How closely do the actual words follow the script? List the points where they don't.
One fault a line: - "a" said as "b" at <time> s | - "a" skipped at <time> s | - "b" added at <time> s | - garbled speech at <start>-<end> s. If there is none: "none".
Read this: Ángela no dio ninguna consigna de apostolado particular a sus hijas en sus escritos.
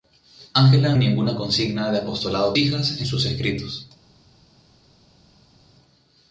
- "no dio" skipped at 0.9 s
- "particular a sus" skipped at 2.5 s